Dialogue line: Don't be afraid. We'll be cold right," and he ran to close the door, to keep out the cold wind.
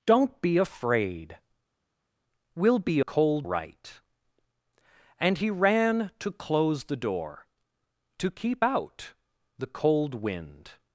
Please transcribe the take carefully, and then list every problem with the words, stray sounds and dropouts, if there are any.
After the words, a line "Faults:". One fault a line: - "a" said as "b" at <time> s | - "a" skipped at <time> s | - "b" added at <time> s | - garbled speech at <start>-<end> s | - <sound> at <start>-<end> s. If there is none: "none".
Don't be afraid. We'll be cold right," and he ran to close the door, to keep out the cold wind.
Faults:
none